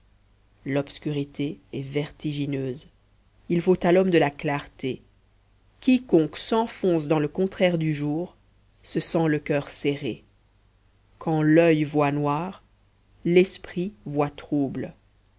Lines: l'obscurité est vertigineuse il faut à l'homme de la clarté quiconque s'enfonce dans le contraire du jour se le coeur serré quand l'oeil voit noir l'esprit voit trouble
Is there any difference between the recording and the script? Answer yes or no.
yes